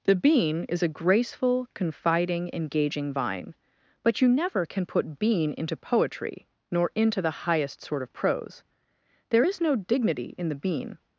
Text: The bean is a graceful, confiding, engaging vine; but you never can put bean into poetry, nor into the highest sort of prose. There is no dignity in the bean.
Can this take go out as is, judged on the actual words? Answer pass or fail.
pass